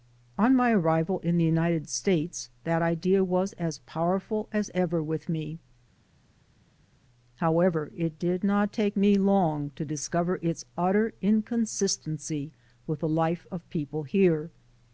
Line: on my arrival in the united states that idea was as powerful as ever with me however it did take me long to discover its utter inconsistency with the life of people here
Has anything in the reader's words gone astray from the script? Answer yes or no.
yes